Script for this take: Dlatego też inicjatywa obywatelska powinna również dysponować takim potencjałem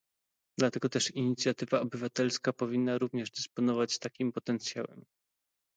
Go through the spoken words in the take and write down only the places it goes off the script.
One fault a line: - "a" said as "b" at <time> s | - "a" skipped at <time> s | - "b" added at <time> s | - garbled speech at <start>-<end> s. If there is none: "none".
none